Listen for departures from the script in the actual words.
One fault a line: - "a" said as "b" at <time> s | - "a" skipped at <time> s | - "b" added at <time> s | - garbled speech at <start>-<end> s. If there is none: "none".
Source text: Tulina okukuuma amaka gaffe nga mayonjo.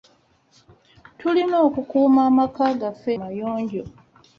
- "nga" skipped at 3.1 s